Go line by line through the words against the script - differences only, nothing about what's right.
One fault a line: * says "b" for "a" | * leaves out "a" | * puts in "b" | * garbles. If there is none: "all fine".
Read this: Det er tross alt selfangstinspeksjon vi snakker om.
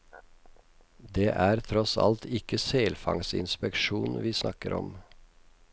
* puts in "ikke"